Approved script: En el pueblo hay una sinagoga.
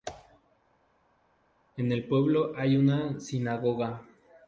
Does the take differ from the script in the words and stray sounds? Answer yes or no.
no